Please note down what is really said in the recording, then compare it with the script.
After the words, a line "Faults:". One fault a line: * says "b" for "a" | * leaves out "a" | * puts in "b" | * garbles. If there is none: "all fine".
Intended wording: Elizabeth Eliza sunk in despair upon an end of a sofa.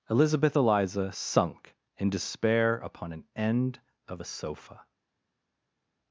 Elizabeth Eliza sunk in despair upon an end of a sofa.
Faults:
all fine